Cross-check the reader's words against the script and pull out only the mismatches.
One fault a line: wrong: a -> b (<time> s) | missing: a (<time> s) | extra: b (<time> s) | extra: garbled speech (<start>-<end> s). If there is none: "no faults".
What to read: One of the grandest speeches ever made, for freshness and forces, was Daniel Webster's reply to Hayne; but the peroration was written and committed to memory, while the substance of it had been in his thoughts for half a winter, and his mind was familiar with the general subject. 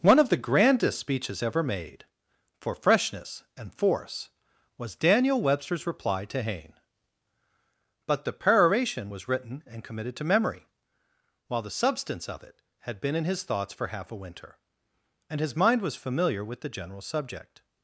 wrong: forces -> force (3.7 s)